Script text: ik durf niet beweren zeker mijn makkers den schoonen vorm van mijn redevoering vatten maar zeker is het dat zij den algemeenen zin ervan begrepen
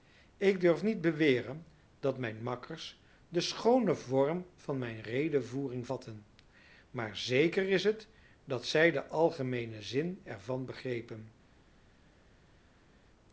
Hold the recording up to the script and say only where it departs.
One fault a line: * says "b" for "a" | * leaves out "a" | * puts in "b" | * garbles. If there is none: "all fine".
* says "dat" for "zeker"